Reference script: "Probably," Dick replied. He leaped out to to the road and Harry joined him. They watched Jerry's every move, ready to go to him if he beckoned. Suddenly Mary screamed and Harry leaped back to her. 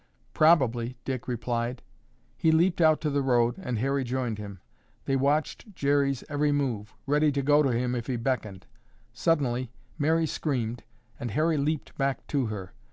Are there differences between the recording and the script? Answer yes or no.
yes